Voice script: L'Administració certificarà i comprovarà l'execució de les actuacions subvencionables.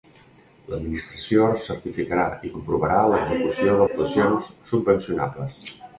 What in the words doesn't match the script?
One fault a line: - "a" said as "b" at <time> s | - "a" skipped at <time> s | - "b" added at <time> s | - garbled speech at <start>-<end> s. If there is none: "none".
- "les" skipped at 3.9 s